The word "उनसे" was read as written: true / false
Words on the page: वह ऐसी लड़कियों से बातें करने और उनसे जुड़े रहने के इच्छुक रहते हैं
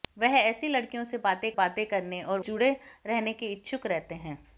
false